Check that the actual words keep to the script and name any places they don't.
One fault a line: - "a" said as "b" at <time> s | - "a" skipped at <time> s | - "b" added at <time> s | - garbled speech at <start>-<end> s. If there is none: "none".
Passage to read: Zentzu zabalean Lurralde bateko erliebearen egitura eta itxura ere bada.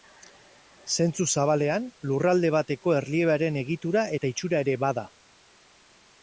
none